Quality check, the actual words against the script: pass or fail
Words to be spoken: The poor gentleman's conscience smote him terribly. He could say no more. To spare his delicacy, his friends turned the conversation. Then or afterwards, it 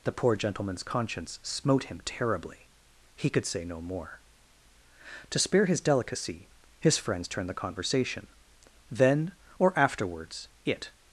pass